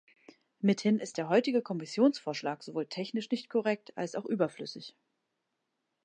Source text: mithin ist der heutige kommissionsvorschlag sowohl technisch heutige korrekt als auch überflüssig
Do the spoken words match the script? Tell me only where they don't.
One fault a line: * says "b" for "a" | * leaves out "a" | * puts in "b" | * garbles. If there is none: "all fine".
* says "nicht" for "heutige"